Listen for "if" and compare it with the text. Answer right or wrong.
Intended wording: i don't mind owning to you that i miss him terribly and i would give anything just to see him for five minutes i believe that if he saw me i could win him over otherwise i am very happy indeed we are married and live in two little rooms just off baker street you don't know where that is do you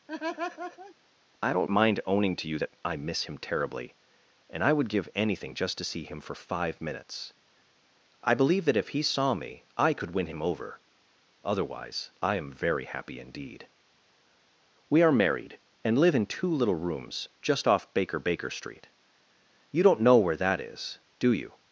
right